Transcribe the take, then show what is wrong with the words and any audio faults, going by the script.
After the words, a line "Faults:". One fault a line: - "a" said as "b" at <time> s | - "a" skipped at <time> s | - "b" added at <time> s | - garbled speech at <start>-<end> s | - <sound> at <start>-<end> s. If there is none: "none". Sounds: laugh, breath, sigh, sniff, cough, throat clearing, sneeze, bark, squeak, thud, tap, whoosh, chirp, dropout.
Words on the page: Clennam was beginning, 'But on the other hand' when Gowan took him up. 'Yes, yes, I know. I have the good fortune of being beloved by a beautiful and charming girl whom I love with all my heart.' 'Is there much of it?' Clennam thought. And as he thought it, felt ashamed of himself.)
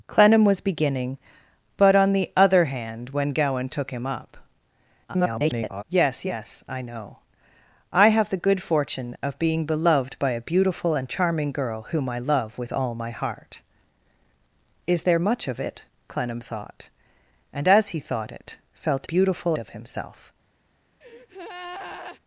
Clennam was beginning, 'But on the other hand' when Gowan took him up. [garbled] 'Yes, yes, I know. I have the good fortune of being beloved by a beautiful and charming girl whom I love with all my heart.' 'Is there much of it?' Clennam thought. And as he thought it, felt beautiful of himself.)
Faults:
- garbled speech at 5.1-5.8 s
- "ashamed" said as "beautiful" at 19.0 s
- breath at 21.0-22.2 s